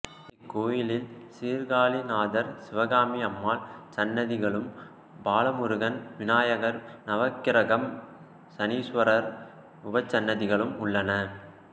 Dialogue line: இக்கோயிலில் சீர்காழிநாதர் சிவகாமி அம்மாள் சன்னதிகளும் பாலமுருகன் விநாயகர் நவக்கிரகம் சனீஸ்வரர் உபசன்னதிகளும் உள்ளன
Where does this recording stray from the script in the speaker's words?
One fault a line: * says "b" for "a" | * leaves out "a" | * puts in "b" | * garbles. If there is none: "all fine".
all fine